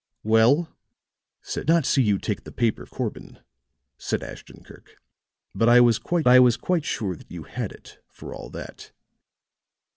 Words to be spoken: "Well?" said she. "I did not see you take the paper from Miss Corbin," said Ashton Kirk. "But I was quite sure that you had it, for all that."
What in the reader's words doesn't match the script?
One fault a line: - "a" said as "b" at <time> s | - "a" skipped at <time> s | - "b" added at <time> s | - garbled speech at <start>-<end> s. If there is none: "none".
- "she I did" skipped at 1.7 s
- "from Miss" skipped at 2.9 s
- "I was quite" added at 6.3 s